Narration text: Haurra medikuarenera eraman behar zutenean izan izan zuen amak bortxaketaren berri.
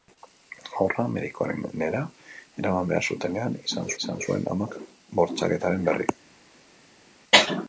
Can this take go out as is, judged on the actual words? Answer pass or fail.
pass